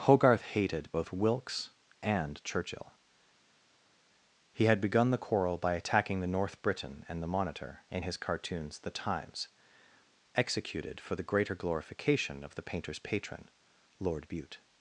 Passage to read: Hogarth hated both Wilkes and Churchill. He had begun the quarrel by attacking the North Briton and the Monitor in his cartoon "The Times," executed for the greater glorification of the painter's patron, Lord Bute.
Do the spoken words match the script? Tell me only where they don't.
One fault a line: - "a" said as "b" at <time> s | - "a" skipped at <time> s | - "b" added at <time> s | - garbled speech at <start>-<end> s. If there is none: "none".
- "cartoon" said as "cartoons" at 8.2 s